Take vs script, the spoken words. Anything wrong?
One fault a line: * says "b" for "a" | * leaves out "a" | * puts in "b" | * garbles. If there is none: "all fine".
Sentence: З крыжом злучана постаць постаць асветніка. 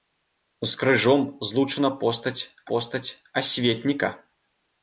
all fine